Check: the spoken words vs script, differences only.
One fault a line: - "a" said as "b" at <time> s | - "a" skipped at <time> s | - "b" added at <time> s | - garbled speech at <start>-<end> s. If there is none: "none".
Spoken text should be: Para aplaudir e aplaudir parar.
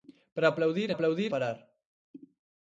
none